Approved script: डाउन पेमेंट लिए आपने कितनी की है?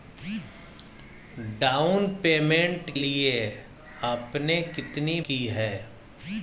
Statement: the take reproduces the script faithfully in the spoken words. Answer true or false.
true